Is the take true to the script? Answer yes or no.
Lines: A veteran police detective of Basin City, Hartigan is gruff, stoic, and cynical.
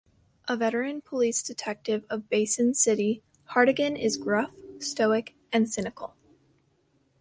yes